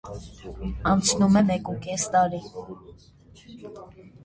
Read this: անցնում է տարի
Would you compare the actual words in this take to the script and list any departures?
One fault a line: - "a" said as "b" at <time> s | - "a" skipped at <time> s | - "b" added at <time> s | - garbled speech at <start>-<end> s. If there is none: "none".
- "մեկուկես" added at 1.5 s